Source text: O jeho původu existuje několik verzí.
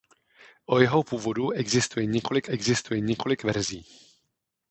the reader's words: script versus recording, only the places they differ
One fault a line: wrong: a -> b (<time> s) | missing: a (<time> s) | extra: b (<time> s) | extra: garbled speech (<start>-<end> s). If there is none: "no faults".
extra: existuje několik (2.4 s)